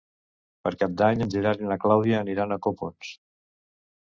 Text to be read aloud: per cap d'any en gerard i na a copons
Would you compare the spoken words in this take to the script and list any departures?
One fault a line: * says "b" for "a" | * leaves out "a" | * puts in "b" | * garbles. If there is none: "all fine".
* puts in "clàudia aniran"